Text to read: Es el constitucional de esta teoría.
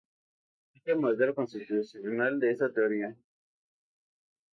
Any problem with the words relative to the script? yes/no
yes